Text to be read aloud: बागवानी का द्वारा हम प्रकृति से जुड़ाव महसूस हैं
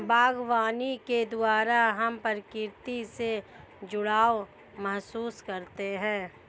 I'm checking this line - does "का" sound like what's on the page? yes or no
no